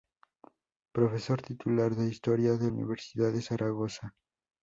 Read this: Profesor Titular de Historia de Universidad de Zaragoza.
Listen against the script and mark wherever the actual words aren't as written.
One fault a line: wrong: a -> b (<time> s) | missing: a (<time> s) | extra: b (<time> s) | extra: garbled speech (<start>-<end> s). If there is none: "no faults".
no faults